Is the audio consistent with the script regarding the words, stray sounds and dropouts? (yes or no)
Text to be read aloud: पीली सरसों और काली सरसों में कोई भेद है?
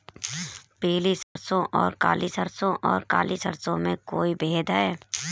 no